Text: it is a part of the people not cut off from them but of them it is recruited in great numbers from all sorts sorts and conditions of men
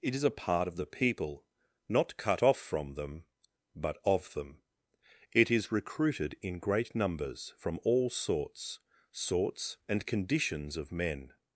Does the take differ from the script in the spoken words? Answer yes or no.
no